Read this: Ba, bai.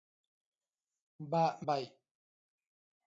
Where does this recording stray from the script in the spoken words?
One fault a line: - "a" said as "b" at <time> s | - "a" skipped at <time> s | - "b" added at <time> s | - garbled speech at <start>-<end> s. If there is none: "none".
none